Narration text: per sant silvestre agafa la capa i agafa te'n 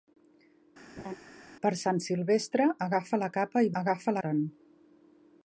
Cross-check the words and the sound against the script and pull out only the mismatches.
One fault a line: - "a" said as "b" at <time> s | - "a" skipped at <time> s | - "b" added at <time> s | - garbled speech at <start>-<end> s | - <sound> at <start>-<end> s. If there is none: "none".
- laugh at 1.0-1.2 s